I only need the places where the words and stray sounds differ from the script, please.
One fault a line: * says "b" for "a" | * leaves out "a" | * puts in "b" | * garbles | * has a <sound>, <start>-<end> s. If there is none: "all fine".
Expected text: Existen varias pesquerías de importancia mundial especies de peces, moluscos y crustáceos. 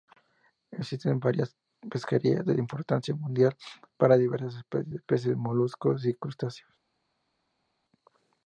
* puts in "para diversas"